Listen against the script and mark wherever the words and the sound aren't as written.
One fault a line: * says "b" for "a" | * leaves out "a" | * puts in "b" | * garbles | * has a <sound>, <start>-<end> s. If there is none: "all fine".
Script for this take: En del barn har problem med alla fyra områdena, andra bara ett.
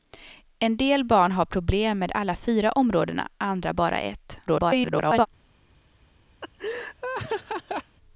* garbles
* has a laugh, 6.4-8.0 s